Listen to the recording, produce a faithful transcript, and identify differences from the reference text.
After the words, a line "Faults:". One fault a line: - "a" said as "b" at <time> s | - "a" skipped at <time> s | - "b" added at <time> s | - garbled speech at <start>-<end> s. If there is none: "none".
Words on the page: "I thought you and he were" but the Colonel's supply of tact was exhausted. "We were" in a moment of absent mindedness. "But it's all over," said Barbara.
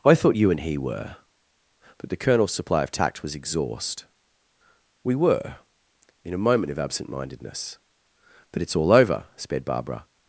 "I thought you and he were" but the Colonel's supply of tact was exhaust. "We were" in a moment of absent mindedness. "But it's all over," sped Barbara.
Faults:
- "exhausted" said as "exhaust" at 3.4 s
- "said" said as "sped" at 9.4 s